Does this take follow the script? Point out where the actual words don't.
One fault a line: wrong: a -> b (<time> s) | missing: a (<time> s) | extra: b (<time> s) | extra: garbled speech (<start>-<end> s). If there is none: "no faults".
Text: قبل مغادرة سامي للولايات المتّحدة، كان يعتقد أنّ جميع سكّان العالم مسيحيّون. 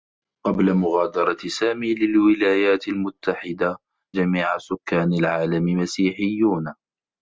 missing: كان يعتقد أنّ (3.8 s)